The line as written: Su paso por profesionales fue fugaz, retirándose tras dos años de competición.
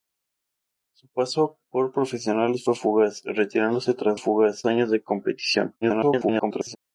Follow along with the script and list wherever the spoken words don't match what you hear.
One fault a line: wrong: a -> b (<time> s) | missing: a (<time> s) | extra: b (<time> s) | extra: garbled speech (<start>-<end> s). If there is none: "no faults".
wrong: dos -> fugaz (4.2 s)
extra: garbled speech (5.8-6.8 s)